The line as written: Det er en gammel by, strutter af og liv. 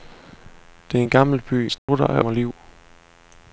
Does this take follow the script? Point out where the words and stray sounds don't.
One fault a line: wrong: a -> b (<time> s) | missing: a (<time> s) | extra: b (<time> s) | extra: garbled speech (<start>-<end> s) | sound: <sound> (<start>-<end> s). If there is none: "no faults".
sound: dropout (1.8-1.9 s)